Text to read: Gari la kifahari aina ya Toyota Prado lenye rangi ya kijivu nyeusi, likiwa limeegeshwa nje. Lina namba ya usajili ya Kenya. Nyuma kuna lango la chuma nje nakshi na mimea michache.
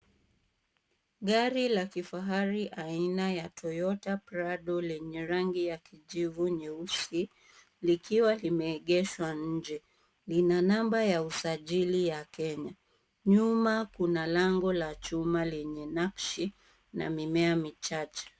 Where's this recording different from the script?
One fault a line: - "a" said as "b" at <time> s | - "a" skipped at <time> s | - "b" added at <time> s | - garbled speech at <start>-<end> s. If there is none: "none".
- "nje" said as "lenye" at 15.4 s